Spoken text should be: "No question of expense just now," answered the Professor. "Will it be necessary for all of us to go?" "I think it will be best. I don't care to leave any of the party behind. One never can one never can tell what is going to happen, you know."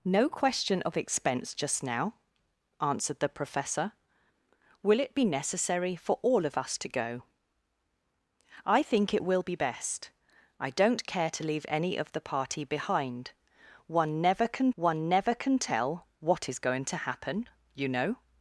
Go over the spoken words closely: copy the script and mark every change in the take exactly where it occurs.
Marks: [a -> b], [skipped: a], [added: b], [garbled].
"No question of expense just now," answered the Professor. "Will it be necessary for all of us to go?" "I think it will be best. I don't care to leave any of the party behind. One never can one never can tell what is going to happen, you know."